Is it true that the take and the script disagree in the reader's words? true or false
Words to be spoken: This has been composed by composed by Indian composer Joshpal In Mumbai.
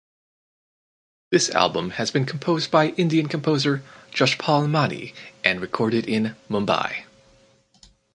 true